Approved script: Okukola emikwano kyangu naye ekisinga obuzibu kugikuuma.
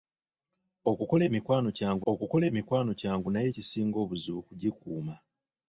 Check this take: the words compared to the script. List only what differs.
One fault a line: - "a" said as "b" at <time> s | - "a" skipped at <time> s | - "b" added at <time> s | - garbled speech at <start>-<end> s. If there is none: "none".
- "okukola emikwano kyangu" added at 2.1 s